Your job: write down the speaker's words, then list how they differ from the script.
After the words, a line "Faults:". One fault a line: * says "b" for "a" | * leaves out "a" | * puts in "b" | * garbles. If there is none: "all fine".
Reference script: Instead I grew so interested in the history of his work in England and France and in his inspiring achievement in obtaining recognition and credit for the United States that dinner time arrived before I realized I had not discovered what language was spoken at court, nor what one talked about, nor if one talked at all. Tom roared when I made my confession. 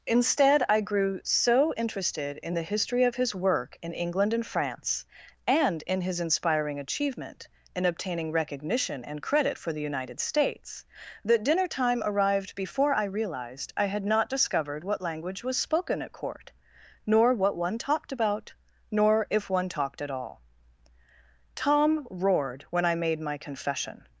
Instead I grew so interested in the history of his work in England and France and in his inspiring achievement in obtaining recognition and credit for the United States that dinner time arrived before I realized I had not discovered what language was spoken at court, nor what one talked about, nor if one talked at all. Tom roared when I made my confession.
Faults:
all fine